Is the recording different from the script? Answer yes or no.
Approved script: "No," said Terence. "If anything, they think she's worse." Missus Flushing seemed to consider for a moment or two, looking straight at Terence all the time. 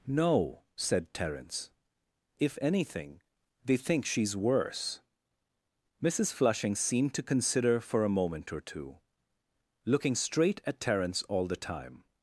no